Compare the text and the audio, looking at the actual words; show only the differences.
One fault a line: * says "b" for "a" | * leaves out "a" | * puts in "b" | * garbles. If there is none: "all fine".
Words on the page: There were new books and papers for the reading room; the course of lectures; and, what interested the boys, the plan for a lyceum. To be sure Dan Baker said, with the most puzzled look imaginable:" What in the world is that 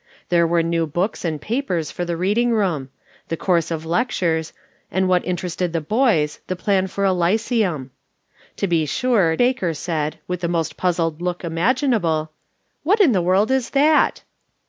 * leaves out "Dan"